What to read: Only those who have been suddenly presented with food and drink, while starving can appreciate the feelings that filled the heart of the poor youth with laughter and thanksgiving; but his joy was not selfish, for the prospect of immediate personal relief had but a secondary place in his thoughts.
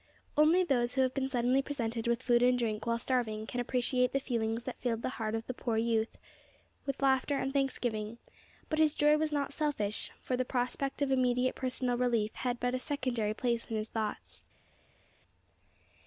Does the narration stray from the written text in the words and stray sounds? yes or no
no